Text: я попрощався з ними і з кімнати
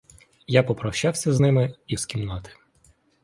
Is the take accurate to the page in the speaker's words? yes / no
yes